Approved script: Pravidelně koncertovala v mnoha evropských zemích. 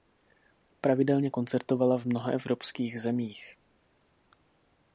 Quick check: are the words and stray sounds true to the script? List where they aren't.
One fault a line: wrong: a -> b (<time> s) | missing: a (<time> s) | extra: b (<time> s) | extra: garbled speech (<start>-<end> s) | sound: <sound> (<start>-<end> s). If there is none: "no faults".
no faults